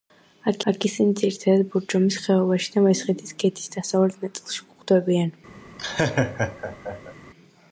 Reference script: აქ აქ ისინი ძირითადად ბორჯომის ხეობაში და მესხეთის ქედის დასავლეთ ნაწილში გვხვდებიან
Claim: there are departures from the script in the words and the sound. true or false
true